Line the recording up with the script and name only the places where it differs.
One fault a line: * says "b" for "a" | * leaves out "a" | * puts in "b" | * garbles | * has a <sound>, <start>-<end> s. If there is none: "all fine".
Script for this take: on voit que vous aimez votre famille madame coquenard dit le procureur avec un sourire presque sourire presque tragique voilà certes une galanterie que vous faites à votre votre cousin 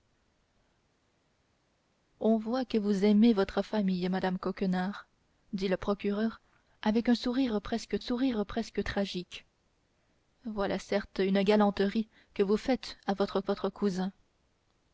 all fine